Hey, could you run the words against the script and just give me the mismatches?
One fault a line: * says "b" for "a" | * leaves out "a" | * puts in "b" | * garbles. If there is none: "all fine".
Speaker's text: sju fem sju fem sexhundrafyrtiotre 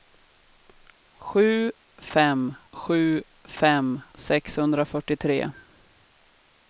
all fine